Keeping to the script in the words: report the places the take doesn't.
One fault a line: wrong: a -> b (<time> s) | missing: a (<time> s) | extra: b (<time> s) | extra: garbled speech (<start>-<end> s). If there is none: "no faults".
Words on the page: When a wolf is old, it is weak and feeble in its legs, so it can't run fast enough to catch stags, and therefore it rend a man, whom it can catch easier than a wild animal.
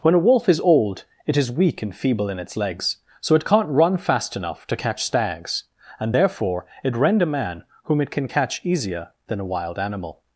no faults